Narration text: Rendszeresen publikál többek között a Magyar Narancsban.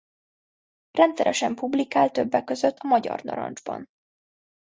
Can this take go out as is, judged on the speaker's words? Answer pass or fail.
pass